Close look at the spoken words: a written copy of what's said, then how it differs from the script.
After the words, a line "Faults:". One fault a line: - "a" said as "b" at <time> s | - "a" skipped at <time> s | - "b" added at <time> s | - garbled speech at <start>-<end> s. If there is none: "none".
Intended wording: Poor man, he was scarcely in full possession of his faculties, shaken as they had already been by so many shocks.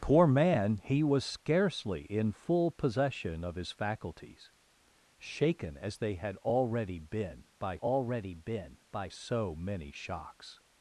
Poor man, he was scarcely in full possession of his faculties, shaken as they had already been by already been by so many shocks.
Faults:
- "already been by" added at 7.7 s